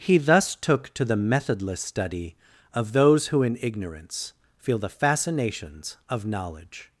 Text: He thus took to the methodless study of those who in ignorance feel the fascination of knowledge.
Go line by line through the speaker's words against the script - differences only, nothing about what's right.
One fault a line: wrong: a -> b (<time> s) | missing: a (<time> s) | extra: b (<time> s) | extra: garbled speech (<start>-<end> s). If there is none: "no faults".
wrong: fascination -> fascinations (4.9 s)